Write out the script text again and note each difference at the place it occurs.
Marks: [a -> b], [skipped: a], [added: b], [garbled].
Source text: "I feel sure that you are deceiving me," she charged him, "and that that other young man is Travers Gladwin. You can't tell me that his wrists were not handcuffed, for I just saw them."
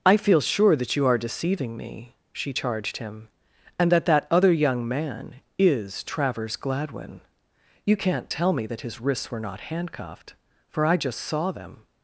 "I feel sure that you are deceiving me," she charged him, "and that that other young man is Travers Gladwin. You can't tell me that his wrists were not handcuffed, for I just saw them."